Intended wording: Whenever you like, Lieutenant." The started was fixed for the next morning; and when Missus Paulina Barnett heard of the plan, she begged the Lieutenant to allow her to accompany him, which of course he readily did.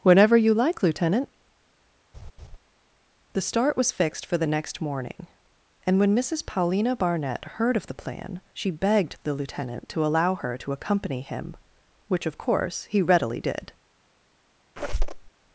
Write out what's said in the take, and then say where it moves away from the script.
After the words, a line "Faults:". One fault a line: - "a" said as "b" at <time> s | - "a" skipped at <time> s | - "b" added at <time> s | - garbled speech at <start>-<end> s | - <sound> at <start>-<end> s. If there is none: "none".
Whenever you like, Lieutenant." The start was fixed for the next morning; and when Missus Paulina Barnett heard of the plan, she begged the Lieutenant to allow her to accompany him, which of course he readily did.
Faults:
- laugh at 2.1-2.6 s
- "started" said as "start" at 3.4 s
- squeak at 14.8-15.3 s